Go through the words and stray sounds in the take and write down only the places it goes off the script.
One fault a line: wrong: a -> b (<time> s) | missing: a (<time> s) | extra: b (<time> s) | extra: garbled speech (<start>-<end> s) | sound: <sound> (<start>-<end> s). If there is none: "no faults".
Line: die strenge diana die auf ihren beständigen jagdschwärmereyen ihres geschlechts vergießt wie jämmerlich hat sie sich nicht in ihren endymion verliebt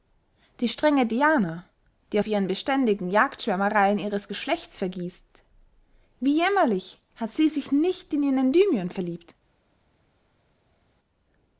no faults